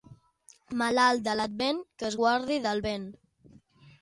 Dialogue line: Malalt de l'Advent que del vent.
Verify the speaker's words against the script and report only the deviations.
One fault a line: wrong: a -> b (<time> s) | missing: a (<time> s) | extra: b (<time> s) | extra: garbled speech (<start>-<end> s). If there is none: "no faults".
extra: es guardi (2.1 s)